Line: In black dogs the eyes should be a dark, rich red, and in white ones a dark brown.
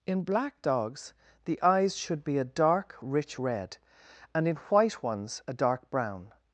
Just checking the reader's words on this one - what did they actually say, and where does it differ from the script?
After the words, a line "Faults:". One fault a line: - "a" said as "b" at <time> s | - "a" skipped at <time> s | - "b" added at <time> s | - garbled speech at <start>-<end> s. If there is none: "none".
In black dogs the eyes should be a dark, rich red, and in white ones a dark brown.
Faults:
none